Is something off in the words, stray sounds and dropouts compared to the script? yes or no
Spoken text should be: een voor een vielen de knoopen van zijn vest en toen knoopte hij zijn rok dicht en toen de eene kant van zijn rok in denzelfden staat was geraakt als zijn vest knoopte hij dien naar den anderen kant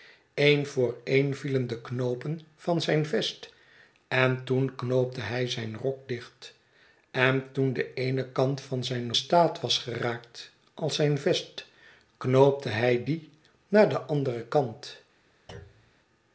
yes